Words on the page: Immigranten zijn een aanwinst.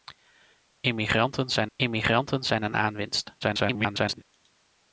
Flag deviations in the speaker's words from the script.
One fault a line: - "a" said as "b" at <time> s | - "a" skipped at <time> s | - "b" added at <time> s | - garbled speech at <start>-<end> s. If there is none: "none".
- "immigranten zijn" added at 1.7 s
- garbled speech at 3.4-4.2 s